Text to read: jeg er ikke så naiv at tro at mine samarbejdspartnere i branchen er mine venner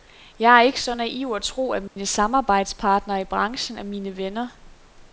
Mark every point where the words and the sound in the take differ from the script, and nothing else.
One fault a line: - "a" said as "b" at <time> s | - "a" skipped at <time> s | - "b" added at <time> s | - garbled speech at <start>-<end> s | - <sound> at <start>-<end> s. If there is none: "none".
- dropout at 1.9-2.0 s